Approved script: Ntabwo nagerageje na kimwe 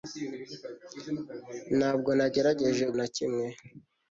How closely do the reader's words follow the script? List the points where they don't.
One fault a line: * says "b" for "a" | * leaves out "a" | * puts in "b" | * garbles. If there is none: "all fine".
all fine